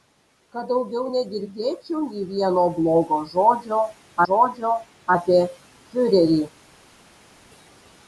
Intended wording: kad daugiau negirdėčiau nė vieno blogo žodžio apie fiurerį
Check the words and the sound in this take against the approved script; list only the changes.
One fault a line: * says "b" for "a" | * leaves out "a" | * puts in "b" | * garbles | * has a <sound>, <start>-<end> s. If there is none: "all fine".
* puts in "žodžio"